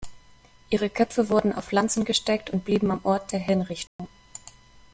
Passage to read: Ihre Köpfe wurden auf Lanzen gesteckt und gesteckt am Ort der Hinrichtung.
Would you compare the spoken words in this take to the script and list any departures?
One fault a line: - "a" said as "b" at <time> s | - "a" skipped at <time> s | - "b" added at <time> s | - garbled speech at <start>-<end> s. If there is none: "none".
- "gesteckt" said as "blieben" at 2.6 s